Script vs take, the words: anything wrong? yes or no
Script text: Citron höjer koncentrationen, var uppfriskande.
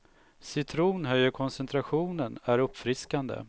yes